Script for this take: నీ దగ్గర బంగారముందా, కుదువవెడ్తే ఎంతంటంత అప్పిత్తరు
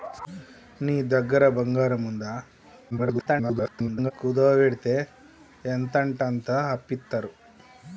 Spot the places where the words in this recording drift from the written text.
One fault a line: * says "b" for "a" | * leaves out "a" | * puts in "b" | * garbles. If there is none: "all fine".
* garbles